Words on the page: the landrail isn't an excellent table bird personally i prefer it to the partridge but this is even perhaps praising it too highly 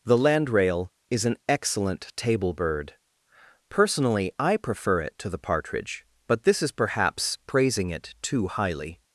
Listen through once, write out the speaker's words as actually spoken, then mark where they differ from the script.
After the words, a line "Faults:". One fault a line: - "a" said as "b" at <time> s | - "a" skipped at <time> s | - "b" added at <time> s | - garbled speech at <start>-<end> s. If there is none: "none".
the landrail is an excellent table bird personally i prefer it to the partridge but this is perhaps praising it too highly
Faults:
- "isn't" said as "is" at 1.1 s
- "even" skipped at 6.7 s